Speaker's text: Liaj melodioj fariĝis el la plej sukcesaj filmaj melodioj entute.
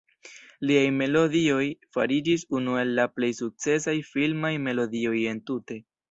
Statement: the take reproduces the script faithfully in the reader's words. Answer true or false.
false